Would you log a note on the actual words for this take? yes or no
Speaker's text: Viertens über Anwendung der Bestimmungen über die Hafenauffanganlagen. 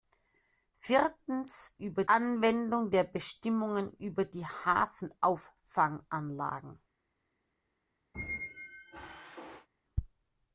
no